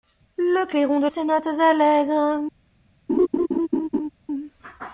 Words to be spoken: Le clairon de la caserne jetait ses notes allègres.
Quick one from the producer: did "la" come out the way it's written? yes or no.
no